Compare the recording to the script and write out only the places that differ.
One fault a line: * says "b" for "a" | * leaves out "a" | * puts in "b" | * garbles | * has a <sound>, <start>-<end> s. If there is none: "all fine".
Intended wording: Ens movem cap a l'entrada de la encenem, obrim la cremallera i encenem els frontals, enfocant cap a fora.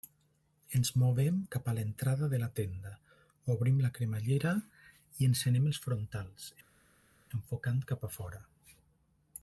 * says "tenda" for "encenem"